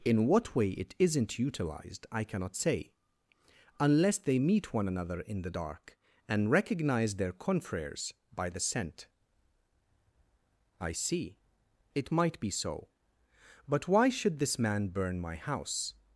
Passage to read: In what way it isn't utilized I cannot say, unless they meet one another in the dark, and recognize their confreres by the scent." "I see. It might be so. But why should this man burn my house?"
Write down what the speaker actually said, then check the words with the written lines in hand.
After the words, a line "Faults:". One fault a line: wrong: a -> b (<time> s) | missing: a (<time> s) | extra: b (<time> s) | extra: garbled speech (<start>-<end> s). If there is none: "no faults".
In what way it isn't utilized I cannot say, unless they meet one another in the dark, and recognize their confreres by the scent." "I see. It might be so. But why should this man burn my house?"
Faults:
no faults